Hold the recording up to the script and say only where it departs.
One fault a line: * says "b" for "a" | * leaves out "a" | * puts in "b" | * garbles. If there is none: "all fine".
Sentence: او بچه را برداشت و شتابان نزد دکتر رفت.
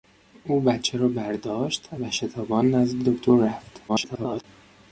* garbles